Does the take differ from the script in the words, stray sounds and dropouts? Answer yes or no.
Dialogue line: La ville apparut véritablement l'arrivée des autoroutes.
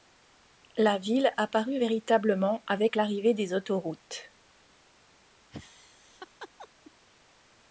yes